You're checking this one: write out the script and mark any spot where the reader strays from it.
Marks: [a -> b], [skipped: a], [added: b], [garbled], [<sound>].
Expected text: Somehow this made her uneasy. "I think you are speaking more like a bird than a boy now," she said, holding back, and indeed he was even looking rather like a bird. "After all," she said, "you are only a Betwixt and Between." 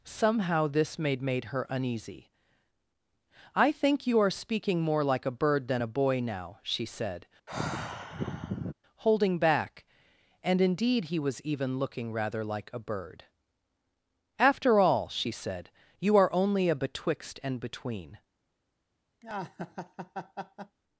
Somehow this made [added: made] her uneasy. "I think you are speaking more like a bird than a boy now," she said, [sigh] holding back, and indeed he was even looking rather like a bird. "After all," she said, "you are only a Betwixt and Between." [laugh]